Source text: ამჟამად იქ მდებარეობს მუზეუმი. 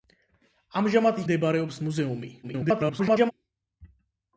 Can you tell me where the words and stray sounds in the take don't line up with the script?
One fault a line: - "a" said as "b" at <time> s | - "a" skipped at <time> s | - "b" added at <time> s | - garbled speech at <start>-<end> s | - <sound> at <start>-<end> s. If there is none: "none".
- "იქ" skipped at 1.2 s
- garbled speech at 2.4-3.3 s